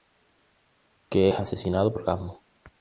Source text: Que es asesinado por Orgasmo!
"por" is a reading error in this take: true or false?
true